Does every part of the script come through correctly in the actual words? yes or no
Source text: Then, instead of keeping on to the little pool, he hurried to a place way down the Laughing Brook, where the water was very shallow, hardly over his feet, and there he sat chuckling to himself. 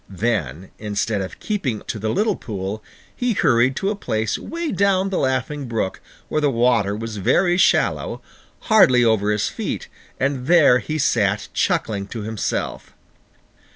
no